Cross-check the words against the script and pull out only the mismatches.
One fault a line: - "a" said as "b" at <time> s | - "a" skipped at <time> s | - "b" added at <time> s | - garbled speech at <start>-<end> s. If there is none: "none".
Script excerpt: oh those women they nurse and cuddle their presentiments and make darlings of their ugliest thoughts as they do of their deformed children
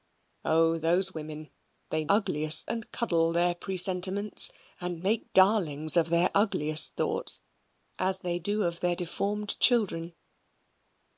- "nurse" said as "ugliest" at 2.1 s